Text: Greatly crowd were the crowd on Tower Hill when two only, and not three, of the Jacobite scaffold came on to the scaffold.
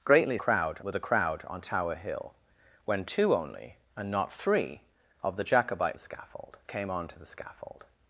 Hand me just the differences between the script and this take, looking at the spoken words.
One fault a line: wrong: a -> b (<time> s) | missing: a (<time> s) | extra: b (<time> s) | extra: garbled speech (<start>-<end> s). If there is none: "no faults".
no faults